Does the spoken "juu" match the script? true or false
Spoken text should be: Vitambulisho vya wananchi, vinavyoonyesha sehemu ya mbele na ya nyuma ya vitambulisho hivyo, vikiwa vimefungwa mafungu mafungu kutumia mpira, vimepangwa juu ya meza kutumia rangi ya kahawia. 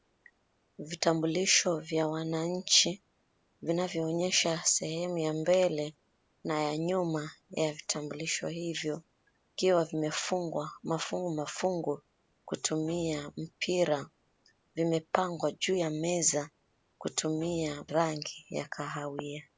true